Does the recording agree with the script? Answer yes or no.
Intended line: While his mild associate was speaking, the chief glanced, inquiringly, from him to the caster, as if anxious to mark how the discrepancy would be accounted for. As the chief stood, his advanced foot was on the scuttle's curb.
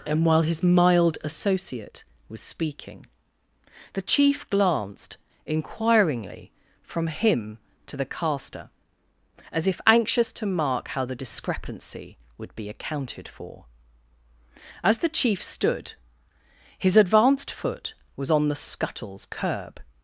no